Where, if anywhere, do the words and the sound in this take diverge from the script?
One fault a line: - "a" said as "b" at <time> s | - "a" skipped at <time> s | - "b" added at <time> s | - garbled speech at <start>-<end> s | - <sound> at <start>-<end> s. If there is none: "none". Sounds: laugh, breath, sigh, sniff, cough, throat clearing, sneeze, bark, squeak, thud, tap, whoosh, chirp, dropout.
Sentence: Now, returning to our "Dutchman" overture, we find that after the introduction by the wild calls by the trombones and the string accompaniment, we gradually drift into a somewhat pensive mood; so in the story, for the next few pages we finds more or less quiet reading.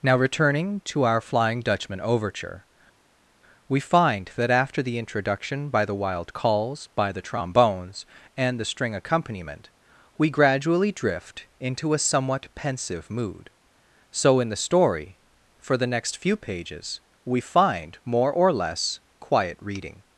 - "Flying" added at 1.2 s
- "finds" said as "find" at 17.4 s